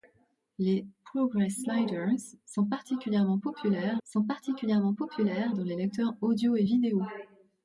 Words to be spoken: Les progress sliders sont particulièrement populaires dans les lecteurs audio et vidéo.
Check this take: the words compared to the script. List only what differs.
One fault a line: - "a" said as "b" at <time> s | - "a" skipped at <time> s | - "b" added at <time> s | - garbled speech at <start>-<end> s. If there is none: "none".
- "sont particulièrement populaires" added at 4.0 s